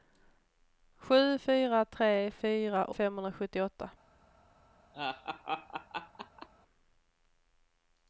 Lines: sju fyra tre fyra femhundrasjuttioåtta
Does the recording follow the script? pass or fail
pass